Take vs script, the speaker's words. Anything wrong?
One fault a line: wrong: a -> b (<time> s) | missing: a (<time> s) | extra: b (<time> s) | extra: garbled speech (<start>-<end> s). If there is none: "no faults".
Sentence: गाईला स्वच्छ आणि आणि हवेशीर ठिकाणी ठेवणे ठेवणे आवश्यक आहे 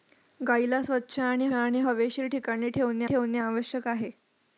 no faults